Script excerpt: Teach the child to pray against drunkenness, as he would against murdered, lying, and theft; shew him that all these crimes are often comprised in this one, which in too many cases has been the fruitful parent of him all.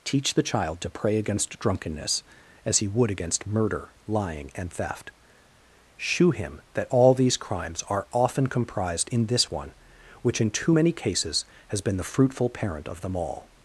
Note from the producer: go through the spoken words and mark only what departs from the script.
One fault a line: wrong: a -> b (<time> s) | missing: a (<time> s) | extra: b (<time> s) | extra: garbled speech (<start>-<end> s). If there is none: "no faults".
wrong: murdered -> murder (3.5 s)
wrong: him -> them (13.0 s)